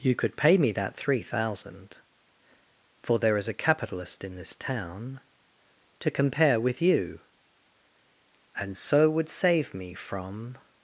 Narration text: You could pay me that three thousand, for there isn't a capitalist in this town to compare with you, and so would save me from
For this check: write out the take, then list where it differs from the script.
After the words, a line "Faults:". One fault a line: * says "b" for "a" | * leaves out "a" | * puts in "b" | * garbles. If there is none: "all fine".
You could pay me that three thousand, for there is a capitalist in this town to compare with you, and so would save me from
Faults:
* says "is" for "isn't"